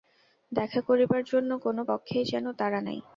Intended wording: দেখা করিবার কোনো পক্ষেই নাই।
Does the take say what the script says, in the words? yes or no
no